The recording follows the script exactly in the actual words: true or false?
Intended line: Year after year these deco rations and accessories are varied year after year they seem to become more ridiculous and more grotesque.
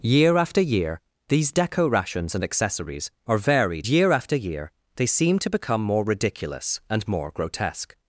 true